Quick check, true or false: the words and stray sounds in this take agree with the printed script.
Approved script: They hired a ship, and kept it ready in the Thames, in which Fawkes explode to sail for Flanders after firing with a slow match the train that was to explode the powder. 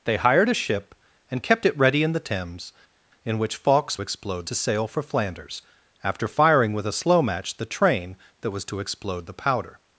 true